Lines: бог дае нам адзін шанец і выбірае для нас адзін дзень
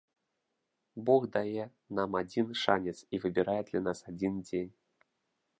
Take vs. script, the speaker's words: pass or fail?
pass